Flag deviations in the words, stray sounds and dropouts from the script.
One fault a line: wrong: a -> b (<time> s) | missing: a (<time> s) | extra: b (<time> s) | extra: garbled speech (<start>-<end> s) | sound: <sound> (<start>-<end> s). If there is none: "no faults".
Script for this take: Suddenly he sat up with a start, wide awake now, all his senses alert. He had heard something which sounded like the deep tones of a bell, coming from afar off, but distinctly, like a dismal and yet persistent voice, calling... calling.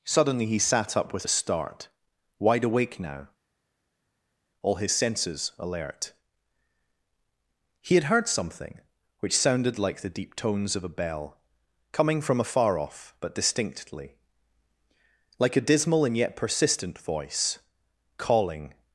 missing: calling (18.7 s)